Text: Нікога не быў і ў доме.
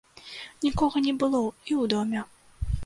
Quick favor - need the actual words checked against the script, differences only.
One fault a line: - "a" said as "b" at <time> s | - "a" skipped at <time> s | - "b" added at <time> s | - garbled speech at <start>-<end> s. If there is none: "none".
- "быў" said as "было" at 1.2 s